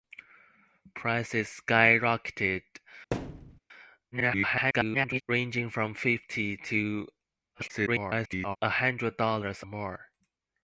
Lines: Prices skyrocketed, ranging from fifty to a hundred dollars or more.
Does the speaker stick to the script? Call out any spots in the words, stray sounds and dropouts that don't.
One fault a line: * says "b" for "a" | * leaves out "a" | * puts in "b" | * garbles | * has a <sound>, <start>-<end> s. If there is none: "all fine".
* has a thud, 3.1-3.6 s
* garbles
* garbles
* leaves out "or"